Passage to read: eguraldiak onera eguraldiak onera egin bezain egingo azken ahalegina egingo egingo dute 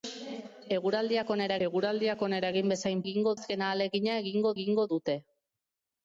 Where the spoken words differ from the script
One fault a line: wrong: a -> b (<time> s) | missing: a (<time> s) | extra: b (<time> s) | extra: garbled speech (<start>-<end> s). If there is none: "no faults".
no faults